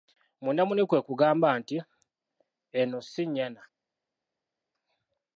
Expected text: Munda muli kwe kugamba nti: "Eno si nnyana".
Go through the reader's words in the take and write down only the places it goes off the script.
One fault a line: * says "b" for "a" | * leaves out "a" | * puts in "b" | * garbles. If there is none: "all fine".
all fine